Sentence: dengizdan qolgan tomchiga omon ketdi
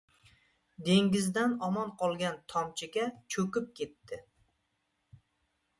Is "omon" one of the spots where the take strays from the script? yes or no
yes